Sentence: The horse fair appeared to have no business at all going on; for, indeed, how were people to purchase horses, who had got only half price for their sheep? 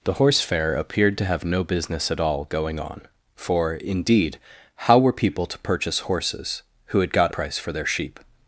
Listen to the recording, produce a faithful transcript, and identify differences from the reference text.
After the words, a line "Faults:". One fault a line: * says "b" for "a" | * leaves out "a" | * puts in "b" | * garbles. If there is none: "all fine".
The horse fair appeared to have no business at all going on; for, indeed, how were people to purchase horses, who had got price for their sheep?
Faults:
* leaves out "only half"